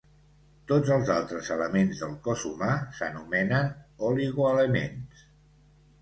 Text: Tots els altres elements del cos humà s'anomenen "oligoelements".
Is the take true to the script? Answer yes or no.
yes